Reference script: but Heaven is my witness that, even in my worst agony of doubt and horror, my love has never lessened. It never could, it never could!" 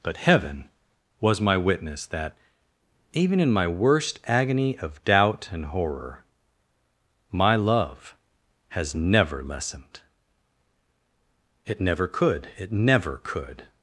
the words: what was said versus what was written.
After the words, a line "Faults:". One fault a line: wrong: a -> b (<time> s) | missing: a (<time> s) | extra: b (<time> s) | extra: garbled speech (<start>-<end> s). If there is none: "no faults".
but Heaven was my witness that, even in my worst agony of doubt and horror, my love has never lessened. It never could, it never could!"
Faults:
wrong: is -> was (1.2 s)